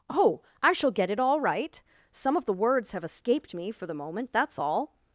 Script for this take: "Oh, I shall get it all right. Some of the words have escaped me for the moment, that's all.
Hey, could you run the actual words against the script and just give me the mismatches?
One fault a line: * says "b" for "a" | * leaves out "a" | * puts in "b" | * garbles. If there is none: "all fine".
all fine